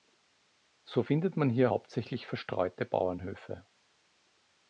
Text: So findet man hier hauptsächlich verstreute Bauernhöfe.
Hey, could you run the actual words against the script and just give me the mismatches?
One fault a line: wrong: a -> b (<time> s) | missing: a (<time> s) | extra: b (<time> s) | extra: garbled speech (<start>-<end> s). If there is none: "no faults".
no faults